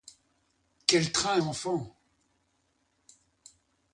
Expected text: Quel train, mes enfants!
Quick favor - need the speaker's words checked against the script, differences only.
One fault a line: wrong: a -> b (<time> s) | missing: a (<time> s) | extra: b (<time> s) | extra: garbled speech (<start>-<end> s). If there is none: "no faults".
missing: mes (1.4 s)